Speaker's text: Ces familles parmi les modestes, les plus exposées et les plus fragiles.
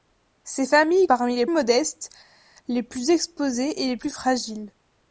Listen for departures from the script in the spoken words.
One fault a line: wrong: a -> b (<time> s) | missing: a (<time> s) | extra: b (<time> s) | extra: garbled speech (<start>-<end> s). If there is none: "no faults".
no faults